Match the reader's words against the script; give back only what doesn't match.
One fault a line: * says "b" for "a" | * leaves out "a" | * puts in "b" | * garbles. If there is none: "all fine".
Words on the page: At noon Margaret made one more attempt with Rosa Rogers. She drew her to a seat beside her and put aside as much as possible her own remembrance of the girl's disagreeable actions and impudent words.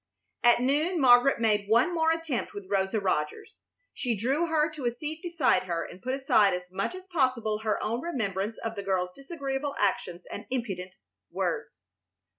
all fine